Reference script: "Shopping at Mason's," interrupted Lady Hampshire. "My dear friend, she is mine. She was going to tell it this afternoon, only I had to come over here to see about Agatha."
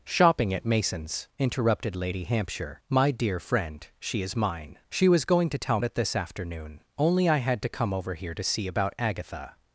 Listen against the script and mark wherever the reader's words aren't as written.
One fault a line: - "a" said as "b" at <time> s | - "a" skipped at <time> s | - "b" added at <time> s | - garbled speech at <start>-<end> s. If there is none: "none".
none